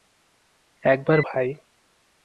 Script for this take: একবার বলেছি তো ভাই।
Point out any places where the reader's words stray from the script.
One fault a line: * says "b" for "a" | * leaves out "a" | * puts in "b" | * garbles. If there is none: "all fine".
* leaves out "বলেছি তো"